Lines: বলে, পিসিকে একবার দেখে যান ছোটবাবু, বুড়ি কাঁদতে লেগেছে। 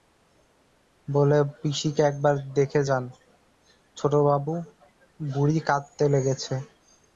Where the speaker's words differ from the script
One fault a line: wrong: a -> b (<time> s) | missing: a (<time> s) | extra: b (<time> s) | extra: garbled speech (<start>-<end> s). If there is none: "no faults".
no faults